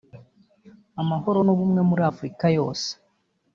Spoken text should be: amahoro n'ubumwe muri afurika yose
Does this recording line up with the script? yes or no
yes